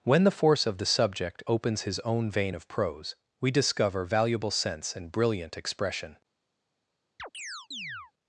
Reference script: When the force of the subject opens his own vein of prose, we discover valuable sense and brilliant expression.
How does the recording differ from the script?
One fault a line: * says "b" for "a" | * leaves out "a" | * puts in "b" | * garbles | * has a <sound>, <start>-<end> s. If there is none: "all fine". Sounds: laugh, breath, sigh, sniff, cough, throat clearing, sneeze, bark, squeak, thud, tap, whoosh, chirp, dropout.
* has a chirp, 7.2-8.1 s